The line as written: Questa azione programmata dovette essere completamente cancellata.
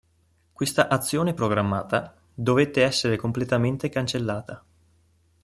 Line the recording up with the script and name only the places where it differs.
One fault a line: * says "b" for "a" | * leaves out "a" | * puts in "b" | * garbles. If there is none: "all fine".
all fine